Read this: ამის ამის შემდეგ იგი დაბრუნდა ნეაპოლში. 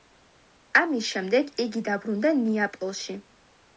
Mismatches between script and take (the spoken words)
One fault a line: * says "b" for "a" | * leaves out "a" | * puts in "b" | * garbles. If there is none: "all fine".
* leaves out "ამის"